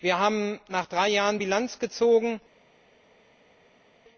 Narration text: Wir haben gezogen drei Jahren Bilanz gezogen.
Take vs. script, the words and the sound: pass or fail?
fail